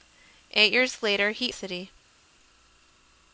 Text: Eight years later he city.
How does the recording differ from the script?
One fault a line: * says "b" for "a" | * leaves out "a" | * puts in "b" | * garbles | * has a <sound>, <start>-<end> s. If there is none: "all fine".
all fine